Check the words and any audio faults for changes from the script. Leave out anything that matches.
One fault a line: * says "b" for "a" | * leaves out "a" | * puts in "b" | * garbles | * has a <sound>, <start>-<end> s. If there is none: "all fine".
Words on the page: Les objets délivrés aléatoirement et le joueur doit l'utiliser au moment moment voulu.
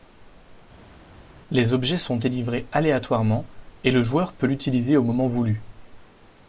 * puts in "sont"
* says "peut" for "doit"
* leaves out "moment"